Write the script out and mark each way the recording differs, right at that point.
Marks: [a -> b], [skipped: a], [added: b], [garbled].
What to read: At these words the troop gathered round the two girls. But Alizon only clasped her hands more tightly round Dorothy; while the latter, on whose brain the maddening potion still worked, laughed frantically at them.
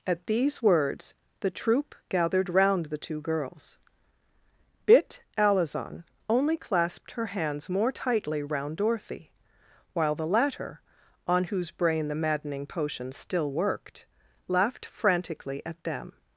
At these words the troop gathered round the two girls. [But -> Bit] Alizon only clasped her hands more tightly round Dorothy; while the latter, on whose brain the maddening potion still worked, laughed frantically at them.